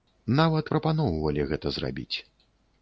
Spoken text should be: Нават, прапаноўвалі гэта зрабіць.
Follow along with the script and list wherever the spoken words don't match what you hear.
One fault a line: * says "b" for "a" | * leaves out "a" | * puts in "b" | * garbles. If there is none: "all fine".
all fine